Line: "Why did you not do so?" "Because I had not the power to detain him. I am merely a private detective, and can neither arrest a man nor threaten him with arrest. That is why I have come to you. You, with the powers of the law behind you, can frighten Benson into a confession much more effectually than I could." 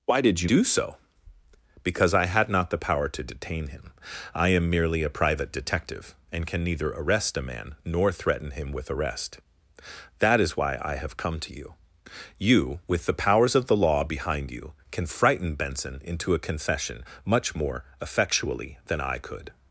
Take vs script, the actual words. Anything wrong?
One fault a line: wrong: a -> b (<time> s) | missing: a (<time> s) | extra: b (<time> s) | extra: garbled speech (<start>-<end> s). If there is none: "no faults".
missing: not (0.5 s)